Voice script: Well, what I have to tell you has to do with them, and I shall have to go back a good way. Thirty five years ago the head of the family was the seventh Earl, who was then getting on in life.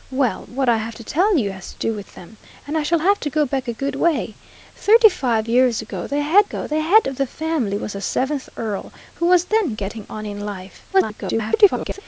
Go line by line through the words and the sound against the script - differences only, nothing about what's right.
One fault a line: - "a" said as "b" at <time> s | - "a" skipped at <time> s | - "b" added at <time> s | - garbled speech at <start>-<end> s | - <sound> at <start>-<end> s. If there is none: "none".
- "ago the head" added at 6.4 s
- garbled speech at 10.9-12.0 s